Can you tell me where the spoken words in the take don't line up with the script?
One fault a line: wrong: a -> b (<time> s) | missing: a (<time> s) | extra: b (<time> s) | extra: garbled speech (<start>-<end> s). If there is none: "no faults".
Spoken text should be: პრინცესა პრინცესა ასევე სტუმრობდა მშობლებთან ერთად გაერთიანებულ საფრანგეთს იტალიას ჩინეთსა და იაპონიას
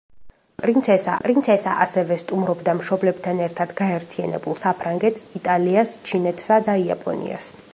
no faults